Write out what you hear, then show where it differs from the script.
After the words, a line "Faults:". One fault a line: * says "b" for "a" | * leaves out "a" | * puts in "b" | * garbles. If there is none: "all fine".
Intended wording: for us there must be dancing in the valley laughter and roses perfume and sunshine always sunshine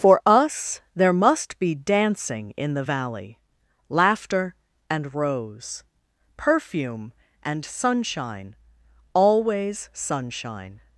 for us there must be dancing in the valley laughter and rose perfume and sunshine always sunshine
Faults:
* says "rose" for "roses"